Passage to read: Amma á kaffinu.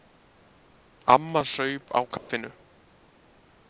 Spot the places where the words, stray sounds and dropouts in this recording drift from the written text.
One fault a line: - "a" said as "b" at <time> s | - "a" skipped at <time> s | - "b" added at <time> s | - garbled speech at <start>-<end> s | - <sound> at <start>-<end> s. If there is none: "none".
- "saup" added at 1.5 s
- dropout at 2.2-2.3 s